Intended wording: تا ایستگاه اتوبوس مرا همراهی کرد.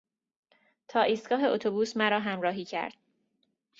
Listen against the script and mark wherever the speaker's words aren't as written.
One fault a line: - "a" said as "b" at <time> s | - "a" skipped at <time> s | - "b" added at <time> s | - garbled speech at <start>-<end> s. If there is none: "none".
none